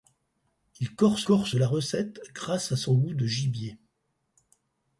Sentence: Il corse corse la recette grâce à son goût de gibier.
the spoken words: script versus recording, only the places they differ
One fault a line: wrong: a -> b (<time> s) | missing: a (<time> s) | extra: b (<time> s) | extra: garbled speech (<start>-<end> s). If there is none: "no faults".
no faults